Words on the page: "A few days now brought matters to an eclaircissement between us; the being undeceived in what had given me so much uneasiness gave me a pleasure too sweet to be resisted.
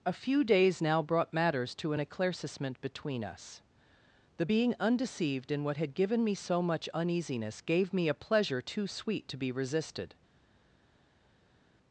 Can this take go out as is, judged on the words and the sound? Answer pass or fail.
pass